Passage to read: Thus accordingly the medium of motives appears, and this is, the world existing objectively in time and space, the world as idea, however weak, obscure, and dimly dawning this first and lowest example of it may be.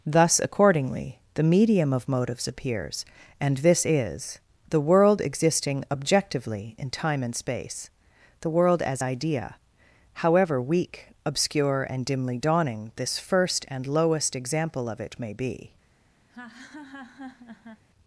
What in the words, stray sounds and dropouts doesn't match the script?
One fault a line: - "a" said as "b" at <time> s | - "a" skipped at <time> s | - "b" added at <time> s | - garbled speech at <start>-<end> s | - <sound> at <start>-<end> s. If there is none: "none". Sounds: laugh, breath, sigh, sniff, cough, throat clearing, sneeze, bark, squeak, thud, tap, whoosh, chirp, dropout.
- laugh at 16.3-17.8 s